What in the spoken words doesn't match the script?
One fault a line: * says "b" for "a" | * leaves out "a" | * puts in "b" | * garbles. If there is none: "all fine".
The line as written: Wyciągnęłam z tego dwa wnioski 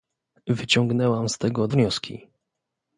* leaves out "dwa"